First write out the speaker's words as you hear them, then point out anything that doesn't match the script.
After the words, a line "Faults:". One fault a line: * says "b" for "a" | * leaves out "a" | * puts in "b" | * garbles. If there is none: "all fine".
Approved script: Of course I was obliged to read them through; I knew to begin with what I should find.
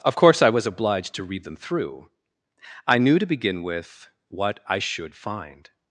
Of course I was obliged to read them through; I knew to begin with what I should find.
Faults:
all fine